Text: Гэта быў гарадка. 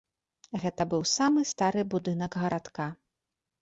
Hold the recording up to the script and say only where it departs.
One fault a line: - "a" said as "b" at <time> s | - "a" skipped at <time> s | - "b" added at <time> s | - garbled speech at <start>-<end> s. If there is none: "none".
- "самы стары будынак" added at 1.2 s